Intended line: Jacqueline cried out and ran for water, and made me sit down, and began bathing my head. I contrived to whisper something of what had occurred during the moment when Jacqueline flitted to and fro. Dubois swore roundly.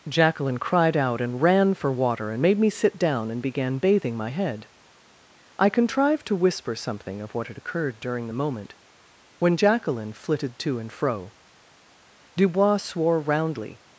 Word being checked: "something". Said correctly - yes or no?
yes